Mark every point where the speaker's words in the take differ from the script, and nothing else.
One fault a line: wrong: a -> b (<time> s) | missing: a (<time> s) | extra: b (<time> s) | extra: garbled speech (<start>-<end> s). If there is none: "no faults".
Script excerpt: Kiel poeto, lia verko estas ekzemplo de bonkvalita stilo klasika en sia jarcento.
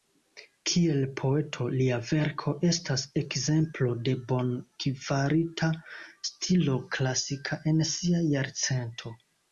no faults